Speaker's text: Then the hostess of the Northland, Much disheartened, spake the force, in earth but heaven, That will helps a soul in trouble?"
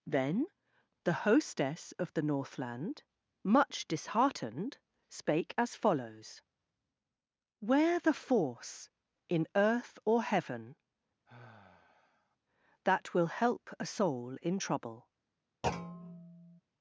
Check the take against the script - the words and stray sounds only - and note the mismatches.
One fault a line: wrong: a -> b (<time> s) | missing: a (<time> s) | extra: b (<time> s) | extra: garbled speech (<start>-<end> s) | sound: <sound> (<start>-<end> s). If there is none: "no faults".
extra: as follows Where (5.6 s)
wrong: but -> or (10.0 s)
sound: sigh (11.3-12.4 s)
wrong: helps -> help (13.3 s)
sound: thud (15.6-16.6 s)